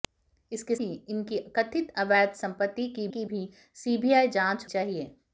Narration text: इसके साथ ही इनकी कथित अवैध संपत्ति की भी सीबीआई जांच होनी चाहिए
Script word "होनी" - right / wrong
wrong